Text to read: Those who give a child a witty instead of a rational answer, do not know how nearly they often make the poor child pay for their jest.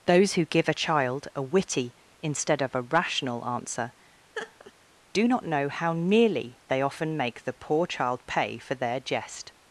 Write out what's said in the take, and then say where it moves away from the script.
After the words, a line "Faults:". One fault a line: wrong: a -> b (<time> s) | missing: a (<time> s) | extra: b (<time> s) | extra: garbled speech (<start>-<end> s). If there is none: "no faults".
Those who give a child a witty instead of a rational answer, do not know how nearly they often make the poor child pay for their jest.
Faults:
no faults